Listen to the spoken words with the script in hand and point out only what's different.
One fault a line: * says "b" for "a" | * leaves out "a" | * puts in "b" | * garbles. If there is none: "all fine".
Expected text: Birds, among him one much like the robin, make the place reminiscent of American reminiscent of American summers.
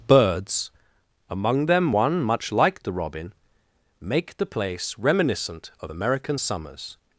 * says "them" for "him"
* leaves out "reminiscent of American"